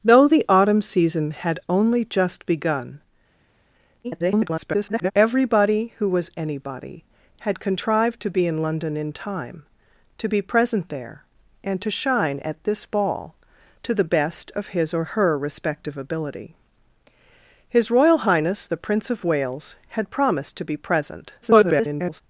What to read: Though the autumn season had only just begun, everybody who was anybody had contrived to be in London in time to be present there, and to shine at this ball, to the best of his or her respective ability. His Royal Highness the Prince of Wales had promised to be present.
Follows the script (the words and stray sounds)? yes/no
no